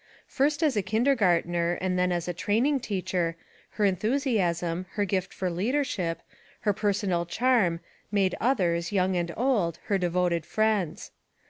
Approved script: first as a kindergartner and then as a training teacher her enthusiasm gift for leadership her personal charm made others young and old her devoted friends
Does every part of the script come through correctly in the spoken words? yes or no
no